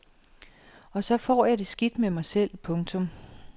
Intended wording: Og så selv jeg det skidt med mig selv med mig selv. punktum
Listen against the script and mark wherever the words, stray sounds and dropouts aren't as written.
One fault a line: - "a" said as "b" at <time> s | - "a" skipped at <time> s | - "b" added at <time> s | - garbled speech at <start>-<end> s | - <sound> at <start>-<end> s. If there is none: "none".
- "selv" said as "får" at 1.2 s
- "med mig selv" skipped at 2.6 s